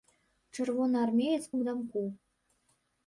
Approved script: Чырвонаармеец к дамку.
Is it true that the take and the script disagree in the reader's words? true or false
false